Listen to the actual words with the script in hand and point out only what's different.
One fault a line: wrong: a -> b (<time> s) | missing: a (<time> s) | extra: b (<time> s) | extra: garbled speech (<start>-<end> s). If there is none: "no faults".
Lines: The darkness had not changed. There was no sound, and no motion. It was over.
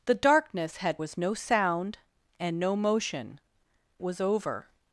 missing: not changed There (1.0 s)
missing: It (3.4 s)